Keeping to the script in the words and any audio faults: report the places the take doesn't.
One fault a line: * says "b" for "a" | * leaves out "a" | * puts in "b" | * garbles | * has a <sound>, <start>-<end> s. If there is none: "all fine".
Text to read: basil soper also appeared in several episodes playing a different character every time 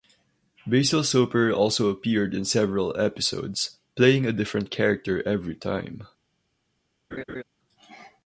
* has a laugh, 7.1-7.4 s